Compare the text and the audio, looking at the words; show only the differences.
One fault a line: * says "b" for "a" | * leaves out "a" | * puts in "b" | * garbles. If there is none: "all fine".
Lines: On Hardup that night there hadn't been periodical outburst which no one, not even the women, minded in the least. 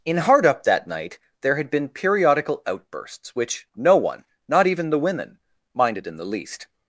* says "In" for "On"
* says "had" for "hadn't"
* says "outbursts" for "outburst"